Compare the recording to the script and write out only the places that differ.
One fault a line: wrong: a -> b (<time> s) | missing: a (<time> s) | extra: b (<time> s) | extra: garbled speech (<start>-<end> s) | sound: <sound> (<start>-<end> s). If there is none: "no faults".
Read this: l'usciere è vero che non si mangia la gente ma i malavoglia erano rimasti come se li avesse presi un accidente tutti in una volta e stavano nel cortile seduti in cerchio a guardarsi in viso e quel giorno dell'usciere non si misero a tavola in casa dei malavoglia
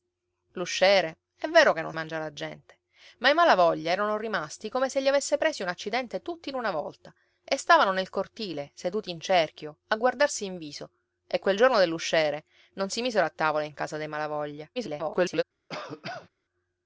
missing: si (1.9 s)
extra: garbled speech (14.8-15.4 s)
sound: cough (15.7-16.3 s)